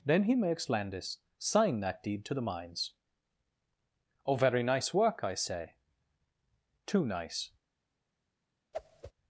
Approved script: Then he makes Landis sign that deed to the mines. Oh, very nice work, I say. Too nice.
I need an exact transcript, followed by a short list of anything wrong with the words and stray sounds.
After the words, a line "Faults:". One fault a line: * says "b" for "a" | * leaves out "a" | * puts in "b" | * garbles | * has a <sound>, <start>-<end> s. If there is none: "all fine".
Then he makes Landis sign that deed to the mines. Oh, very nice work, I say. Too nice.
Faults:
* has a whoosh, 8.7-9.1 s